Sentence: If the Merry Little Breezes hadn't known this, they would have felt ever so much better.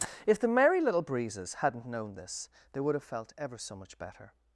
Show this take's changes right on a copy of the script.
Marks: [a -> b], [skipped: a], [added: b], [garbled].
If the Merry Little Breezes hadn't known this, they would have felt ever so much better.